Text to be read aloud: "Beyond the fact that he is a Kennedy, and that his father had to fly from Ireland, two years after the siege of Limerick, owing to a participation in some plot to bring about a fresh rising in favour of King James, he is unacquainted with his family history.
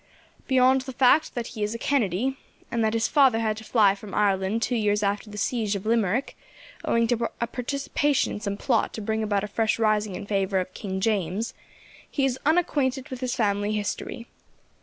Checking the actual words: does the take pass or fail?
pass